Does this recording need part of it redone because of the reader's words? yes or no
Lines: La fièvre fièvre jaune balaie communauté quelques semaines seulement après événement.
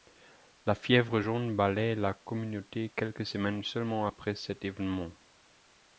yes